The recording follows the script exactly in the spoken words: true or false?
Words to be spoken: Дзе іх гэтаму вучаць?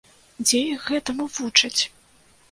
true